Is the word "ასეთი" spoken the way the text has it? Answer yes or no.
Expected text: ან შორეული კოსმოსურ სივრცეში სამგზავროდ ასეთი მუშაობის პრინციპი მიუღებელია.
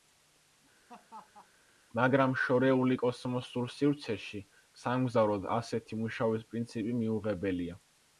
yes